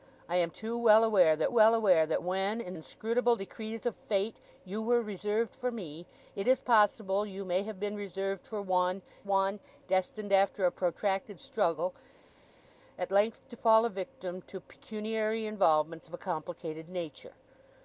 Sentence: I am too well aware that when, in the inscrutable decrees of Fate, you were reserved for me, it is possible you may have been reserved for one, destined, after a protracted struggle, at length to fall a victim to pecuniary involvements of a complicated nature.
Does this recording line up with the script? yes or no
no